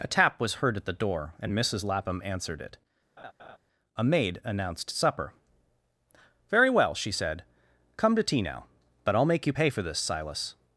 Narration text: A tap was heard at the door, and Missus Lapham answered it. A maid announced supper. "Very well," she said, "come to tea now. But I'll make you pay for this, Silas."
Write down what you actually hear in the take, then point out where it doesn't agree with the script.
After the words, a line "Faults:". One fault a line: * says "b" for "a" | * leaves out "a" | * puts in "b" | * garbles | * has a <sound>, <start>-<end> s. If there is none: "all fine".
A tap was heard at the door, and Missus Lapham answered it. A maid announced supper. "Very well," she said, "come to tea now. But I'll make you pay for this, Silas."
Faults:
* has a laugh, 3.2-3.6 s